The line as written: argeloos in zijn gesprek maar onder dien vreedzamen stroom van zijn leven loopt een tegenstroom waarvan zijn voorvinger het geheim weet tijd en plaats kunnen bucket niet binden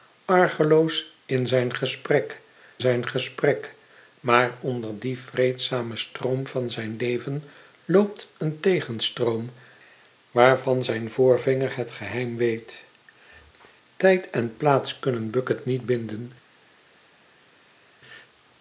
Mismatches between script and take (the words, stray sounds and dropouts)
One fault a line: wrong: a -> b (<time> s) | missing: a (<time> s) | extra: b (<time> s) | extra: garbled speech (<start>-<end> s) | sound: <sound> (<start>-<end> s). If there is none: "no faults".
extra: zijn gesprek (2.8 s)